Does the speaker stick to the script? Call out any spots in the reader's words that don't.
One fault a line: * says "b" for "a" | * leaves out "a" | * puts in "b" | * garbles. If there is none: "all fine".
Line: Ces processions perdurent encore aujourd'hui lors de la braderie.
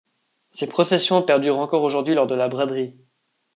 all fine